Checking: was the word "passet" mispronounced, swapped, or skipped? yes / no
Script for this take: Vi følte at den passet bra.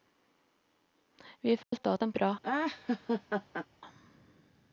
yes